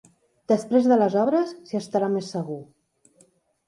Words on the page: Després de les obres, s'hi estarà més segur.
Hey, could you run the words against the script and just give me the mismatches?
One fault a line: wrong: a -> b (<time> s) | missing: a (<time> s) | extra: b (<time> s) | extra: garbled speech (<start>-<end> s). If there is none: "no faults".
no faults